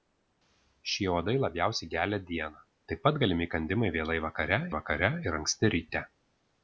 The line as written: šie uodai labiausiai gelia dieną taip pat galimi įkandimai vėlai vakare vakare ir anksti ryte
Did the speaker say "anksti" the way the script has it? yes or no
yes